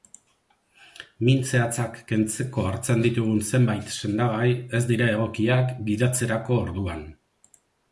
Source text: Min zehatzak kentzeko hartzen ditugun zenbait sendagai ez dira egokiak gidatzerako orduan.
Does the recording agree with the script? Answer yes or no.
yes